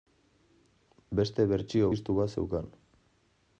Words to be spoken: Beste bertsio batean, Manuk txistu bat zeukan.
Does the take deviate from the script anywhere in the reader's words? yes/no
yes